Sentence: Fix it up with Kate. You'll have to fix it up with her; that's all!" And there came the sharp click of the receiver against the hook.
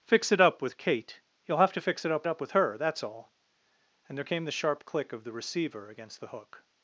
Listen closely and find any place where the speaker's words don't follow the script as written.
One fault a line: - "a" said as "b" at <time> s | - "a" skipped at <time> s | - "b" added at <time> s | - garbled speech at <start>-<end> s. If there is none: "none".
- "up" added at 2.3 s